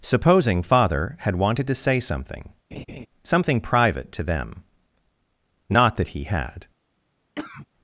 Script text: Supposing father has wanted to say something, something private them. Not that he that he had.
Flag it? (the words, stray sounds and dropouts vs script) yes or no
yes